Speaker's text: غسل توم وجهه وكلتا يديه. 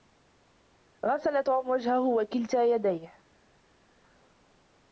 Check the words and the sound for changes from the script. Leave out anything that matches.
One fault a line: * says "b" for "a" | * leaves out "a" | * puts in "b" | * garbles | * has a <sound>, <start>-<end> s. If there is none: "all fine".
all fine